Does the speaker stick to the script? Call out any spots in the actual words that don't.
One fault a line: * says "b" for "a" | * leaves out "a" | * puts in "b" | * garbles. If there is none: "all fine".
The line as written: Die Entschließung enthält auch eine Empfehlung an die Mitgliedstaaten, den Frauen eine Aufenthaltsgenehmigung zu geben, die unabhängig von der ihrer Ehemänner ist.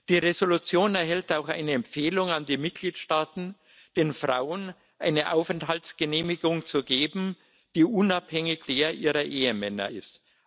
* leaves out "von"